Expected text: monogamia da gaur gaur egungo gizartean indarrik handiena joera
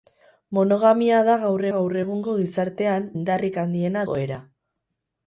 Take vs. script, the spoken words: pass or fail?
pass